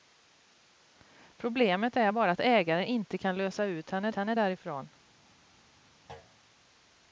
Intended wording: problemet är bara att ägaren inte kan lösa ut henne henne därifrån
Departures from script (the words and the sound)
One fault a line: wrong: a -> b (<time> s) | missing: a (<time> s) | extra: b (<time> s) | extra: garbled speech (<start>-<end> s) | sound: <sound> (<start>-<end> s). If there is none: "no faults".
sound: thud (6.1-6.4 s)